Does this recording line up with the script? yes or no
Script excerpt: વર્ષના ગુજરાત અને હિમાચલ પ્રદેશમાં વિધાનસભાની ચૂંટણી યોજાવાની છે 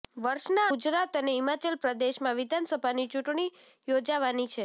yes